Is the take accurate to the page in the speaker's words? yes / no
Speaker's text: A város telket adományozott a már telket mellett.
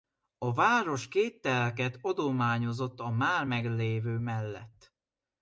no